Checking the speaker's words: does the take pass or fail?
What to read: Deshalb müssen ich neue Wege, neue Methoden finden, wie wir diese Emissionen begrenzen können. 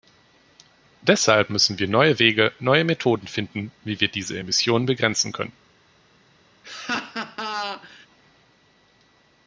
fail